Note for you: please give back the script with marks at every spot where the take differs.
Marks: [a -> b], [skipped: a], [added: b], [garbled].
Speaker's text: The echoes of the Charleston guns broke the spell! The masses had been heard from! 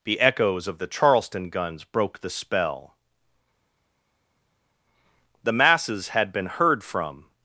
The echoes of the Charleston guns broke the spell! The masses had been heard from!